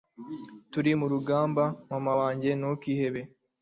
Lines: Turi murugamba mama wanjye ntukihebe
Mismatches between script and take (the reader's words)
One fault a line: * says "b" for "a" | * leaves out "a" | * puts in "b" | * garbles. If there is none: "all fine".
all fine